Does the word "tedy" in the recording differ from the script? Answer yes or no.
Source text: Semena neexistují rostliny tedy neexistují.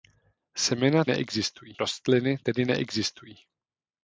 no